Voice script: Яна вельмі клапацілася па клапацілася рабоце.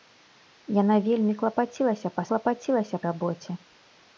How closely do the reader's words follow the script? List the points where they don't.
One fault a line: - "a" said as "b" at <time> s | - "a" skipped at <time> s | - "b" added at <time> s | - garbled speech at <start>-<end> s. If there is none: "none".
none